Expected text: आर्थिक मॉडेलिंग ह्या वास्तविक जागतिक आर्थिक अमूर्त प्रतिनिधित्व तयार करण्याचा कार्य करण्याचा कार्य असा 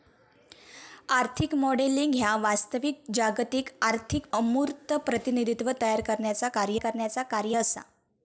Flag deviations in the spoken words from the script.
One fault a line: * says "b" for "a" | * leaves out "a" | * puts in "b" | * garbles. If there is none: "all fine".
all fine